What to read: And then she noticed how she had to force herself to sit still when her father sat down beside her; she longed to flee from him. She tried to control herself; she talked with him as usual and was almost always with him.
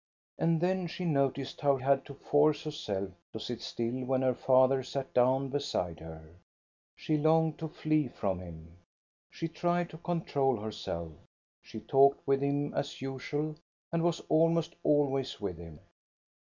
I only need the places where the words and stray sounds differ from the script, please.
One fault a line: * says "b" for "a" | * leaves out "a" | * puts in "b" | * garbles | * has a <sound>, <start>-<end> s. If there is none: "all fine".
* leaves out "she"